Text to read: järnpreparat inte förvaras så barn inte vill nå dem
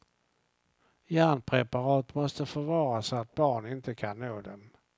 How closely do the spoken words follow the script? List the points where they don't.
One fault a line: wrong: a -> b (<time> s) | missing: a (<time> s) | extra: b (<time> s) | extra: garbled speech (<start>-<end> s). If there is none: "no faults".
wrong: inte -> måste (2.1 s)
extra: att (3.1 s)
wrong: vill -> kan (3.9 s)